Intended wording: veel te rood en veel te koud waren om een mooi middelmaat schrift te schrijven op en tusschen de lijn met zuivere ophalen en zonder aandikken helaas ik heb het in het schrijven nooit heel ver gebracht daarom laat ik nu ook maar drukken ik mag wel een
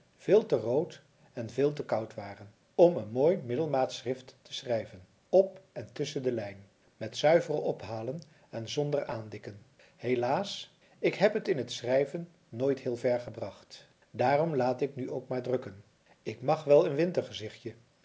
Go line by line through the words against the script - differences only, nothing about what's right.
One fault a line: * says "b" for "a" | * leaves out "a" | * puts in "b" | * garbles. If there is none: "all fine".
all fine